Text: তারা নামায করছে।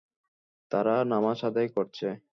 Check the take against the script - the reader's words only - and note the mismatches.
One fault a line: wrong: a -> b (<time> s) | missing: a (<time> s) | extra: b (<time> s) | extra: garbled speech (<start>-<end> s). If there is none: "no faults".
extra: আদায় (1.5 s)